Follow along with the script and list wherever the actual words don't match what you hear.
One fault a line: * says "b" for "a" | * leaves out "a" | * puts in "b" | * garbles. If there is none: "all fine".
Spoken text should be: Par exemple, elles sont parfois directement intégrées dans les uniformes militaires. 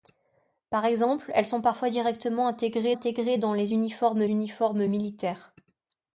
* puts in "intégrées"
* puts in "uniformes"